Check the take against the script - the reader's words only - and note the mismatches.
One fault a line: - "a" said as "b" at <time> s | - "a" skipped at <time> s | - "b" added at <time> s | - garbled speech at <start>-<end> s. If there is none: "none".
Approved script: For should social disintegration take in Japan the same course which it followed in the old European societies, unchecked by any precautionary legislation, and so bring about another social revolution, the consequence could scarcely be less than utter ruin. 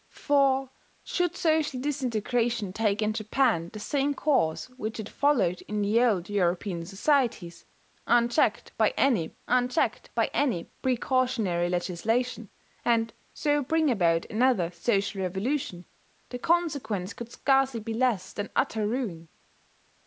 - "unchecked by any" added at 9.5 s